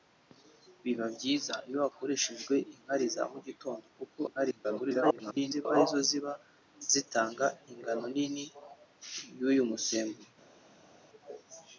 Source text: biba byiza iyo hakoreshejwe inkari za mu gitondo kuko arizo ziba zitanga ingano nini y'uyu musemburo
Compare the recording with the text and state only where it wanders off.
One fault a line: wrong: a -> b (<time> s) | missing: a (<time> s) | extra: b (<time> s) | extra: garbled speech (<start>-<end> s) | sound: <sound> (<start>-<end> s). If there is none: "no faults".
extra: garbled speech (4.3-5.7 s)